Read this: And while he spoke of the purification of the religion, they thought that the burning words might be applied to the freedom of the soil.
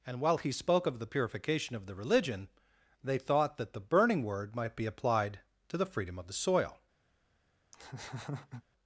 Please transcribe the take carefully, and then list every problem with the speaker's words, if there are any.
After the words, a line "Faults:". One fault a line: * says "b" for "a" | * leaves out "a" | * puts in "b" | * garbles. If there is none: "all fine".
And while he spoke of the purification of the religion, they thought that the burning word might be applied to the freedom of the soil.
Faults:
* says "word" for "words"